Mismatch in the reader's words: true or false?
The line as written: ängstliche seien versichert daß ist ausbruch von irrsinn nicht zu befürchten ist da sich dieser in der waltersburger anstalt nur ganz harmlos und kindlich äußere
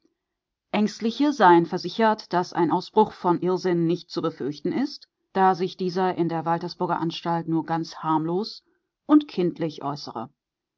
true